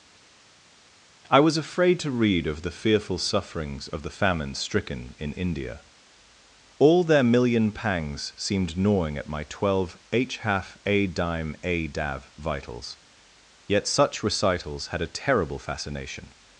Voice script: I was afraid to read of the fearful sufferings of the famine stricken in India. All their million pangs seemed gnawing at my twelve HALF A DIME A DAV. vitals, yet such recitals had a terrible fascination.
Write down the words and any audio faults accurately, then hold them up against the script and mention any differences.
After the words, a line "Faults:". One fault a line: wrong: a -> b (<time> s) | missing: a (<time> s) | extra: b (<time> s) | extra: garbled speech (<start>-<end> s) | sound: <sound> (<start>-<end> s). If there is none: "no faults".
I was afraid to read of the fearful sufferings of the famine stricken in India. All their million pangs seemed gnawing at my twelve h HALF A DIME A DAV. vitals, yet such recitals had a terrible fascination.
Faults:
extra: h (10.1 s)